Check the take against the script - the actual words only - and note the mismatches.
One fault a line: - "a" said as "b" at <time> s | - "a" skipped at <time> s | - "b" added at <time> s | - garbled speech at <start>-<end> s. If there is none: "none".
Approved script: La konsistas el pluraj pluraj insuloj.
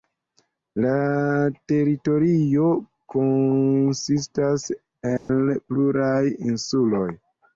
- "teritorio" added at 1.7 s
- "pluraj" skipped at 6.2 s